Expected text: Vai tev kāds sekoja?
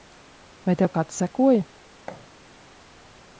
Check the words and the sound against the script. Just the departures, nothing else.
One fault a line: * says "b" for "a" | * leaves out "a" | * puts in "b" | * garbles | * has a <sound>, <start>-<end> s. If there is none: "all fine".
* has a thud, 2.1-2.3 s